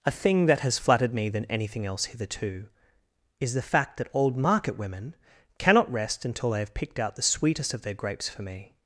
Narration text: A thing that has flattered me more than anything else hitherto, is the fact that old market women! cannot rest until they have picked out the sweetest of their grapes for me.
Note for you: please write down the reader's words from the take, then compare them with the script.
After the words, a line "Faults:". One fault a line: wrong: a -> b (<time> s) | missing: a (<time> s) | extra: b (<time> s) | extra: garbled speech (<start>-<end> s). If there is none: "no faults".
A thing that has flattered me than anything else hitherto, is the fact that old market women! cannot rest until they have picked out the sweetest of their grapes for me.
Faults:
missing: more (1.3 s)